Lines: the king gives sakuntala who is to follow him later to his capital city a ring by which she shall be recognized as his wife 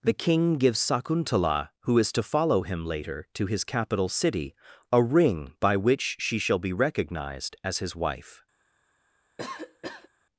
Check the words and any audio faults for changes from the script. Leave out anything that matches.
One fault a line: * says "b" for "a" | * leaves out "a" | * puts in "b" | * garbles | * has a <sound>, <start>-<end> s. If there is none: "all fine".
* has a cough, 9.4-10.1 s